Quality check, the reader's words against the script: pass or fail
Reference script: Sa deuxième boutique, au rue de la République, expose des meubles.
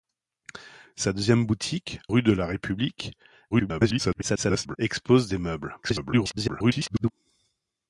fail